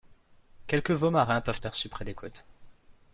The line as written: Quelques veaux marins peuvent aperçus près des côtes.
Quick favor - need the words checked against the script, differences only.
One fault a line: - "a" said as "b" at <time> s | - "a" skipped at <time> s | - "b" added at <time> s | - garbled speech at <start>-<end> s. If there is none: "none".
none